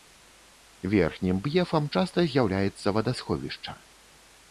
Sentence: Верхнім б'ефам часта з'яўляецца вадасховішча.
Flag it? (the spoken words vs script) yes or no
no